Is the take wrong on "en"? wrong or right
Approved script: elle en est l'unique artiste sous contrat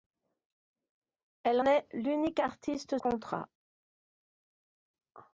wrong